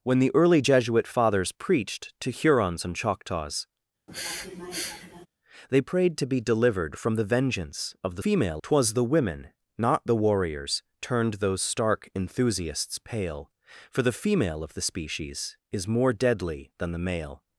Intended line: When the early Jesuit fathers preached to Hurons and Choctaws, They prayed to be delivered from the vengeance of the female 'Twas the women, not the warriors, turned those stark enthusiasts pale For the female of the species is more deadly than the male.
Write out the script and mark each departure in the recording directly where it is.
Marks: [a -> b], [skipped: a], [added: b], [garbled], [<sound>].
When the early Jesuit fathers preached to Hurons and Choctaws, [sniff] They prayed to be delivered from the vengeance of the female 'Twas the women, not the warriors, turned those stark enthusiasts pale For the female of the species is more deadly than the male.